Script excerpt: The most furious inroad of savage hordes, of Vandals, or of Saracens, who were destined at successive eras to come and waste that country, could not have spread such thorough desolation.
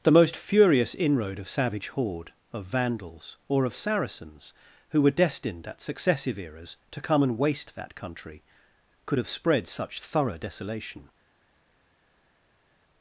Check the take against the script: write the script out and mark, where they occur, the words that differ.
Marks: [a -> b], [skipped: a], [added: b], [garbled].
The most furious inroad of savage [hordes, -> horde] of Vandals, or of Saracens, who were destined at successive eras to come and waste that country, could [skipped: not] have spread such thorough desolation.